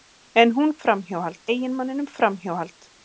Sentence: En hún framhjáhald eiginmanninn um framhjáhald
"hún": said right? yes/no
yes